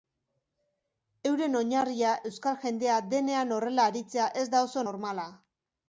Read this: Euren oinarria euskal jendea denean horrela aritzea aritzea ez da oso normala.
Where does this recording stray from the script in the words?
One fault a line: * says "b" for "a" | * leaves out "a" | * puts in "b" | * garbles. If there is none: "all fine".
* leaves out "aritzea"